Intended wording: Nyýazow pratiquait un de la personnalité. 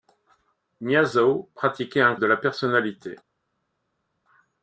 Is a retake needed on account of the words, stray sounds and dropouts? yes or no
no